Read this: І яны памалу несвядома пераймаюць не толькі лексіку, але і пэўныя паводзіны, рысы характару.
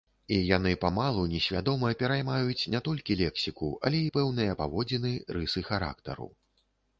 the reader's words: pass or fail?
pass